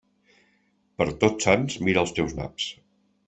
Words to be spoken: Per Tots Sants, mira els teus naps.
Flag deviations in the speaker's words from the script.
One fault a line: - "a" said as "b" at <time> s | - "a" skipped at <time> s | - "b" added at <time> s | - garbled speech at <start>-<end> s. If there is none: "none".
none